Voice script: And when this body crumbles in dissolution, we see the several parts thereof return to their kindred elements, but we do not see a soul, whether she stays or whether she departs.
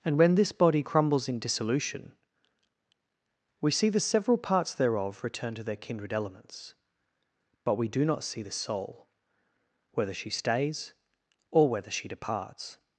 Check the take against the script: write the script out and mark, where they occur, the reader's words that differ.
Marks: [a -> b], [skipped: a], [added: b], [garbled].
And when this body crumbles in dissolution, we see the several parts thereof return to their kindred elements, but we do not see [a -> the] soul, whether she stays or whether she departs.